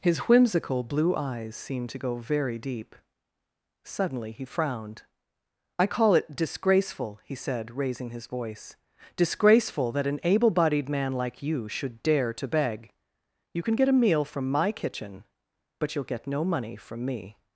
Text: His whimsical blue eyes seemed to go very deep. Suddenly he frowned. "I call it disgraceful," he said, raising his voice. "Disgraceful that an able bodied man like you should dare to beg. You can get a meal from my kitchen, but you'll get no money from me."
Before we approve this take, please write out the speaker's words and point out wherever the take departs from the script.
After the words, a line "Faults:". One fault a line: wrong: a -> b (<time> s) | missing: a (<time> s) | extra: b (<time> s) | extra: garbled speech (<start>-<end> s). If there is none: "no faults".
His whimsical blue eyes seemed to go very deep. Suddenly he frowned. "I call it disgraceful," he said, raising his voice. "Disgraceful that an able bodied man like you should dare to beg. You can get a meal from my kitchen, but you'll get no money from me."
Faults:
no faults